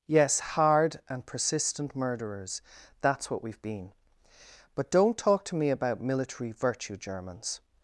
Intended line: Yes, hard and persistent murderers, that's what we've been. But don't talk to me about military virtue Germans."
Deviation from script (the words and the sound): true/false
false